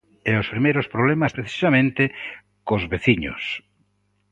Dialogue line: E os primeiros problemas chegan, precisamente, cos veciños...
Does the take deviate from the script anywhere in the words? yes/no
yes